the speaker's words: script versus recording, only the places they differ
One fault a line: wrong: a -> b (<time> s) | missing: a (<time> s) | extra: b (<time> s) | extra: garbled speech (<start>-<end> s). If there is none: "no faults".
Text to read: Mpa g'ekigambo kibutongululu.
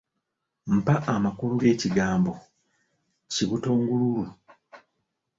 extra: amakulu (1.1 s)